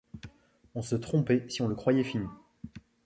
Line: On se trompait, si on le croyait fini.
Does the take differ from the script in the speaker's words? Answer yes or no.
no